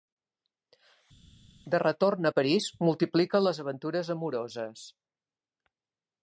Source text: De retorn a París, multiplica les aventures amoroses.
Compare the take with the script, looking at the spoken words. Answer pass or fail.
pass